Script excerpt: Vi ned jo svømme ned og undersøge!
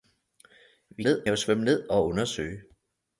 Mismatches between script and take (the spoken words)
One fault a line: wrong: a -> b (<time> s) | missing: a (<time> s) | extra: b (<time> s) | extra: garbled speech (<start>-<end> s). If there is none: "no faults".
no faults